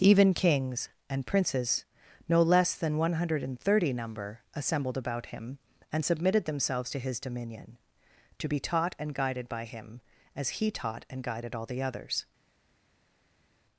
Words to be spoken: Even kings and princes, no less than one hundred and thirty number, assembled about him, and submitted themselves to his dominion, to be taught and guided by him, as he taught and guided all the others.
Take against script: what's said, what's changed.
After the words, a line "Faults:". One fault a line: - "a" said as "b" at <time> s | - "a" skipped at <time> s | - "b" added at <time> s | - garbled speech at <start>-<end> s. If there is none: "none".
Even kings and princes, no less than one hundred and thirty number, assembled about him, and submitted themselves to his dominion, to be taught and guided by him, as he taught and guided all the others.
Faults:
none